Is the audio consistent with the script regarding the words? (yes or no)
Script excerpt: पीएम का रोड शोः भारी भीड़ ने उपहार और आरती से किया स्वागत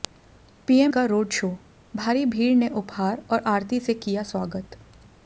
yes